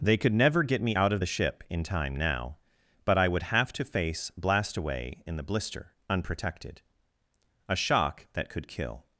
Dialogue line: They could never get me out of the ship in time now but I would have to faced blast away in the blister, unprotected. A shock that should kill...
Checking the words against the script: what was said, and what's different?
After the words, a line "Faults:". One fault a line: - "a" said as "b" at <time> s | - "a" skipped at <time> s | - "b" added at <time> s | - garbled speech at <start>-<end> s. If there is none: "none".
They could never get me out of the ship in time now but I would have to face blast away in the blister, unprotected. A shock that could kill...
Faults:
- "faced" said as "face" at 3.8 s
- "should" said as "could" at 8.5 s